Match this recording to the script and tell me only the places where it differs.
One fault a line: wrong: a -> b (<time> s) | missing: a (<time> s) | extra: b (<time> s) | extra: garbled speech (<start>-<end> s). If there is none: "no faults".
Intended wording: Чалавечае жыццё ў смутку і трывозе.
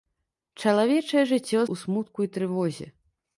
no faults